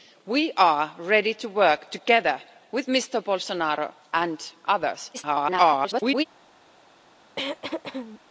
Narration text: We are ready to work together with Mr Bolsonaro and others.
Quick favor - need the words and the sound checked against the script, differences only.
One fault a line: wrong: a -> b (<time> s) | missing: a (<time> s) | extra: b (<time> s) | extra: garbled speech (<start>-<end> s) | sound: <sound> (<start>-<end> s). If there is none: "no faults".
extra: garbled speech (5.1-6.2 s)
sound: throat clearing (7.4-8.2 s)